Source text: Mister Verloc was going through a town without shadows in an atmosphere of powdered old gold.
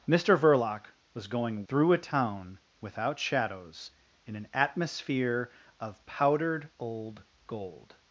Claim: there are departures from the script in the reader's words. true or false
false